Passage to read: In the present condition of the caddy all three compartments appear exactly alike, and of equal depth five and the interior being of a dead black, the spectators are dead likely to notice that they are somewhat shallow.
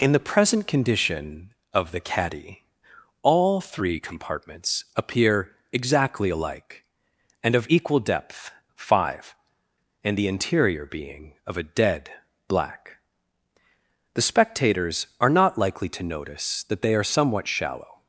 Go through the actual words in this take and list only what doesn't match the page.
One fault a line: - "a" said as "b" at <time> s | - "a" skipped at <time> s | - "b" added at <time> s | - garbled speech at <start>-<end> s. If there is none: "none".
- "dead" said as "not" at 15.3 s